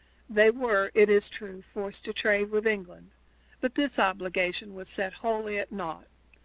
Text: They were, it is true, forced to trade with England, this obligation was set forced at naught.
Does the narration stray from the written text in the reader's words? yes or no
yes